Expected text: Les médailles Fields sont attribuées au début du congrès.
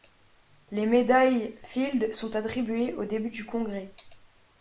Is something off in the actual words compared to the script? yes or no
no